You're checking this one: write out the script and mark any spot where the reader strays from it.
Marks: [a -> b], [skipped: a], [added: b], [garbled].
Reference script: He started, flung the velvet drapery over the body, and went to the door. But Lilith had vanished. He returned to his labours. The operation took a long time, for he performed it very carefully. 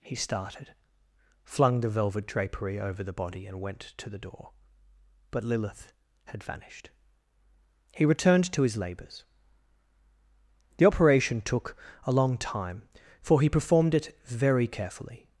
He started, flung the velvet drapery over the body, and went to the door. But Lilith had vanished. He returned to his labours. The operation took a long time, for he performed it very carefully.